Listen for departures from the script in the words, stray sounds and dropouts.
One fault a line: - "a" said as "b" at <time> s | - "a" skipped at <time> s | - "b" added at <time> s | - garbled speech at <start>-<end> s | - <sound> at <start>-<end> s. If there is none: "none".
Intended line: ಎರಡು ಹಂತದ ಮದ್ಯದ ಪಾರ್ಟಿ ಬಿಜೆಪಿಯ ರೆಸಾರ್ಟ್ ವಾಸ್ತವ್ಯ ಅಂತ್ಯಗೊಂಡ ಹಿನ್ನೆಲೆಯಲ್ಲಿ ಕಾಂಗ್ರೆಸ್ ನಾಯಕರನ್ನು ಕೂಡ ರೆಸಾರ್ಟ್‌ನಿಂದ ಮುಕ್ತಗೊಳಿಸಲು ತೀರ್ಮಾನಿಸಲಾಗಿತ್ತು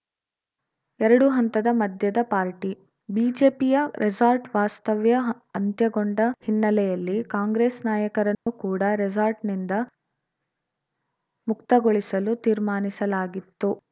- dropout at 8.3-8.5 s